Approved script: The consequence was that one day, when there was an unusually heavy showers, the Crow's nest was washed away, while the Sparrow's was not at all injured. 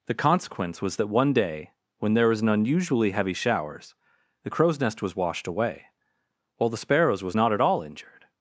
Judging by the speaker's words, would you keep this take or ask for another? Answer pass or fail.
pass